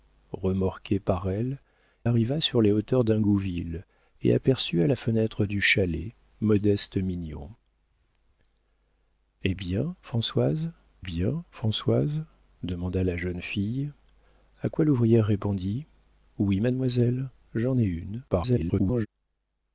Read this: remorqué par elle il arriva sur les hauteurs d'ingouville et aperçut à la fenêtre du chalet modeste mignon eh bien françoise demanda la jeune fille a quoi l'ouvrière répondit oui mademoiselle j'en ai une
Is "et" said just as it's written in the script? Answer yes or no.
yes